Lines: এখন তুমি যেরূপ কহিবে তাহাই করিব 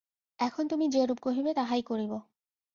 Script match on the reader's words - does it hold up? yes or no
yes